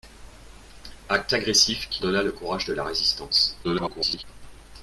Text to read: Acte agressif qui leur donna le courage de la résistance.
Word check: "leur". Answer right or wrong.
wrong